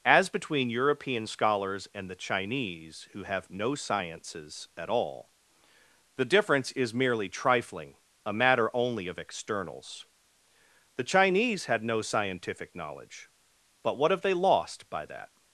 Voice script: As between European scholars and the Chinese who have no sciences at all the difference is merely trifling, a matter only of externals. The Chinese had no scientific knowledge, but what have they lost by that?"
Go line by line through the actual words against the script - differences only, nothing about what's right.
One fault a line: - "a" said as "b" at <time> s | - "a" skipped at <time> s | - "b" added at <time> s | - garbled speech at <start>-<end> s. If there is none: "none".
none